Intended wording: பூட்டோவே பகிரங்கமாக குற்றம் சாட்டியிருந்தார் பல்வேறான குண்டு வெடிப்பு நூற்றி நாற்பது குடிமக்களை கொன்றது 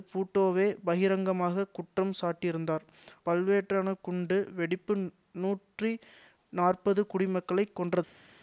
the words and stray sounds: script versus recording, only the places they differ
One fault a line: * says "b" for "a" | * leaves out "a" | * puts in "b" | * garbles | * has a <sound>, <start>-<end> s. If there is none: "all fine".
all fine